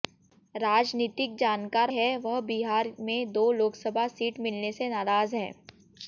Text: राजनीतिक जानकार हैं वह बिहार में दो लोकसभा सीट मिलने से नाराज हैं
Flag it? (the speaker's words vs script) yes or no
no